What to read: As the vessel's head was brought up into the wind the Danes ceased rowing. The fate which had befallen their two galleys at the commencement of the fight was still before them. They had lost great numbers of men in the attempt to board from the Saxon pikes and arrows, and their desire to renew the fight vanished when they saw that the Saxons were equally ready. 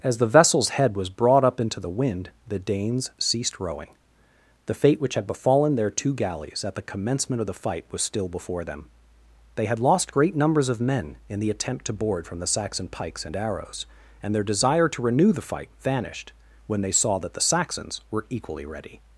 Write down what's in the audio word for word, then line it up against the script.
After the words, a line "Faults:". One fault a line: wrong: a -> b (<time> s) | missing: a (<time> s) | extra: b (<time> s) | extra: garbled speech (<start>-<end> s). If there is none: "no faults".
As the vessel's head was brought up into the wind the Danes ceased rowing. The fate which had befallen their two galleys at the commencement of the fight was still before them. They had lost great numbers of men in the attempt to board from the Saxon pikes and arrows, and their desire to renew the fight vanished when they saw that the Saxons were equally ready.
Faults:
no faults